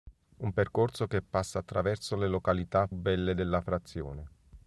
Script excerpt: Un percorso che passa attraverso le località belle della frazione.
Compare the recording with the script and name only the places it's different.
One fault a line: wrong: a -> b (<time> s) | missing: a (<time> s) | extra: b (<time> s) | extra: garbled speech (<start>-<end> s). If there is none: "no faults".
no faults